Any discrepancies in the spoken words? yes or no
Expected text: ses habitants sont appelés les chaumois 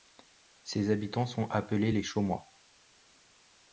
no